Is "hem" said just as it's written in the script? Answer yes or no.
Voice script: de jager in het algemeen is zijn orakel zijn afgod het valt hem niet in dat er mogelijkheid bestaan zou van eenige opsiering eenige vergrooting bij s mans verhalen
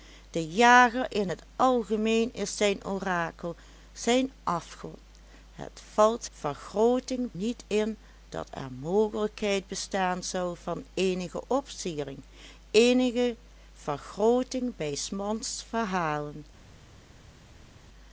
no